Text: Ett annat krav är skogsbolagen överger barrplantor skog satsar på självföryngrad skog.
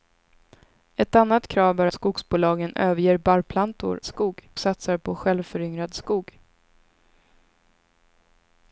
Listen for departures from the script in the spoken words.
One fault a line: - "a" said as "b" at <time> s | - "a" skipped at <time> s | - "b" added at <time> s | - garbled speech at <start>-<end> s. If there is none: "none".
none